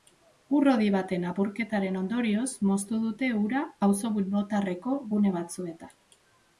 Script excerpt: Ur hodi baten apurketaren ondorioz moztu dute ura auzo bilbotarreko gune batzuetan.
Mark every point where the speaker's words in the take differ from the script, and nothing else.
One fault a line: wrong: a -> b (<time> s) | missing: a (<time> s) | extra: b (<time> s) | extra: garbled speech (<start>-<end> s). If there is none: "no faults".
no faults